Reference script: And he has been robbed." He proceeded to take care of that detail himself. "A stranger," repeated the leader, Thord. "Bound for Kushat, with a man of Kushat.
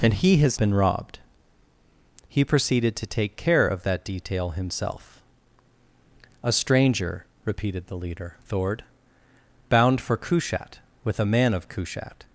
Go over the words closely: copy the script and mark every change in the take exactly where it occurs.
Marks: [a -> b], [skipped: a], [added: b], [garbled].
And he has been robbed." He proceeded to take care of that detail himself. "A stranger," repeated the leader, Thord. "Bound for Kushat, with a man of Kushat.